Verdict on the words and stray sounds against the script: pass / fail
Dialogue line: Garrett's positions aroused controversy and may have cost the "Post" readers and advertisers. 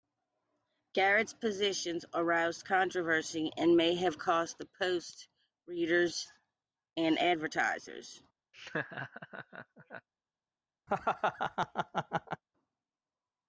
fail